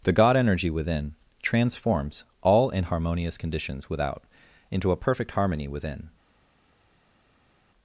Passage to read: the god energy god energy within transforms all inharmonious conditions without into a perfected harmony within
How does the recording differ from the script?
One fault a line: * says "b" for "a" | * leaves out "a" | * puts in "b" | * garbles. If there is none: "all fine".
* leaves out "god energy"
* says "perfect" for "perfected"